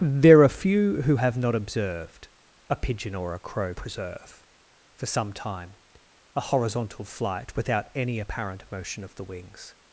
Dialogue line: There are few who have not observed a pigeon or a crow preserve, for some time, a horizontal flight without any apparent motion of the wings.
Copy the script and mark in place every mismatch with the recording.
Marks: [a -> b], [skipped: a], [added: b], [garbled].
There are few who have not observed a pigeon or a crow preserve, for some time, a horizontal flight without any apparent motion of the wings.